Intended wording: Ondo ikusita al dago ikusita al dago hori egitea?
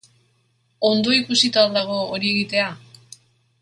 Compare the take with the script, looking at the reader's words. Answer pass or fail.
fail